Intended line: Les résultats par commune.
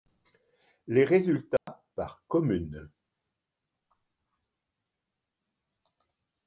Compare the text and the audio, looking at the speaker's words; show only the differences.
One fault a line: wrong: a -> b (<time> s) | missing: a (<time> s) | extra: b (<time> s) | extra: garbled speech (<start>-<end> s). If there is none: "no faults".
no faults